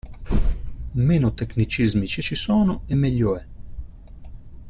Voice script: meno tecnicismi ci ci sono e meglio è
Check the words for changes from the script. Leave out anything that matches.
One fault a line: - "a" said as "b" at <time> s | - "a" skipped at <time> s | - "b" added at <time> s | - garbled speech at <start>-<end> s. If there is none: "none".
none